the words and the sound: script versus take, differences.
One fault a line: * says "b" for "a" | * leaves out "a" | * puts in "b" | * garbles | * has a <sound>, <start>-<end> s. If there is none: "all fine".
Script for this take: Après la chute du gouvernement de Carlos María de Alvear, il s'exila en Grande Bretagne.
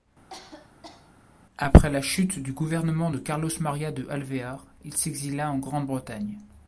* has a cough, 0.3-1.1 s